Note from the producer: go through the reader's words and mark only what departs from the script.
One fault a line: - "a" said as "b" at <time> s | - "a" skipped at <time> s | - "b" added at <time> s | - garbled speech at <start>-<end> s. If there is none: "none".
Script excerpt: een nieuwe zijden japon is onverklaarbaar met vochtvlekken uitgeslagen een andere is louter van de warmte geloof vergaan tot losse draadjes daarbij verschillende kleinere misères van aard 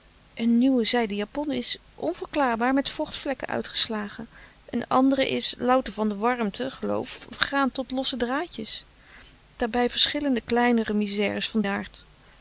none